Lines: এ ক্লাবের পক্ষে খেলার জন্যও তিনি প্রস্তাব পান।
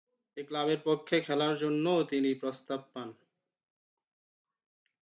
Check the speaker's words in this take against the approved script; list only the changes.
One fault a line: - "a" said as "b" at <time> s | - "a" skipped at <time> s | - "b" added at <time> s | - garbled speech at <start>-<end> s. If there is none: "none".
none